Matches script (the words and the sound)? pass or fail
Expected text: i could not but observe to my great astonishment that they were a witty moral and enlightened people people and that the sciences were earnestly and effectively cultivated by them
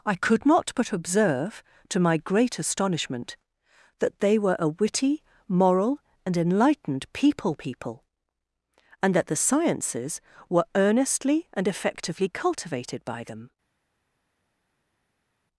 pass